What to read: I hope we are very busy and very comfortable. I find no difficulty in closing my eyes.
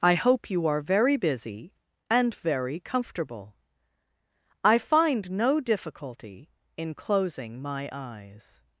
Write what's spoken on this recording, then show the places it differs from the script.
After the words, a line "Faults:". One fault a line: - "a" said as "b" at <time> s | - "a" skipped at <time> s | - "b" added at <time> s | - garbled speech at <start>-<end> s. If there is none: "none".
I hope you are very busy and very comfortable. I find no difficulty in closing my eyes.
Faults:
- "we" said as "you" at 0.5 s